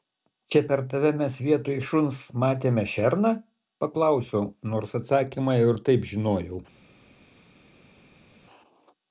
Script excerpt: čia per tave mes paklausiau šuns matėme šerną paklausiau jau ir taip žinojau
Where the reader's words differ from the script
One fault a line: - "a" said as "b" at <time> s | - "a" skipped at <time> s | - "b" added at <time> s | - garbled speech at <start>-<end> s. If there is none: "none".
- "paklausiau" said as "vietoj" at 1.5 s
- "nors atsakymą" added at 4.7 s